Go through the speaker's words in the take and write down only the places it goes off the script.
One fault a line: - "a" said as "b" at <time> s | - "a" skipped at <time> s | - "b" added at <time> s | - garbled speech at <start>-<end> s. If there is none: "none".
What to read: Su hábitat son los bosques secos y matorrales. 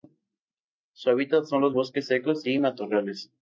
none